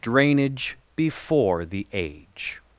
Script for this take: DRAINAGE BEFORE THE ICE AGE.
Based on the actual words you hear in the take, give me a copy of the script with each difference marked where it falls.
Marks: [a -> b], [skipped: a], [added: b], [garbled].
DRAINAGE BEFORE THE [skipped: ICE] AGE.